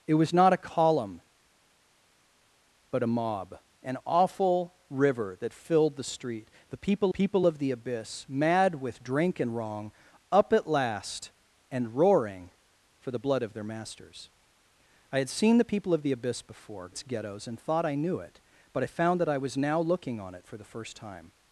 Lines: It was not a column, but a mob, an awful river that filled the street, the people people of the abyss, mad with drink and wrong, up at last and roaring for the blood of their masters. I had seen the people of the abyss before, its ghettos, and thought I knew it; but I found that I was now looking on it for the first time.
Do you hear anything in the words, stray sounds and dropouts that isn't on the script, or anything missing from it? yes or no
no